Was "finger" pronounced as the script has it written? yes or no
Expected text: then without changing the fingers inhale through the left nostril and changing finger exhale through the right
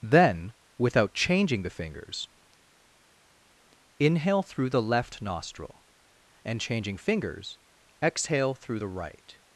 no